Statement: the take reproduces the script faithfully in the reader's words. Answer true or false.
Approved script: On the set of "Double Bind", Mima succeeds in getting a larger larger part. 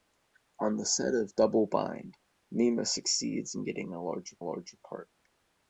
true